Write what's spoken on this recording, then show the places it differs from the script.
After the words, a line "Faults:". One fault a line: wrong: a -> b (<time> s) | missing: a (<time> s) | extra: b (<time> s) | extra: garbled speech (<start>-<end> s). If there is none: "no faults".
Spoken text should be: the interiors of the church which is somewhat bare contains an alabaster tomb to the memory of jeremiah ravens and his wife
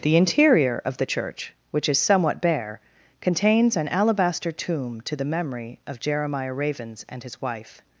the interior of the church which is somewhat bare contains an alabaster tomb to the memory of jeremiah ravens and his wife
Faults:
wrong: interiors -> interior (0.2 s)